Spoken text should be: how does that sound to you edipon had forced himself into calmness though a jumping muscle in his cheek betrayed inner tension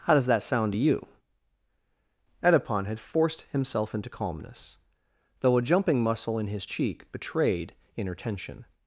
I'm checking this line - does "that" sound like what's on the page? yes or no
yes